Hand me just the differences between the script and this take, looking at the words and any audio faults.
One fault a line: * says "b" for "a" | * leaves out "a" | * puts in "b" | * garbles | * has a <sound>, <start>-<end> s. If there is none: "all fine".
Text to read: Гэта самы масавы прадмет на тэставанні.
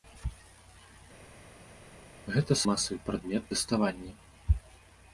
* leaves out "самы"
* leaves out "на"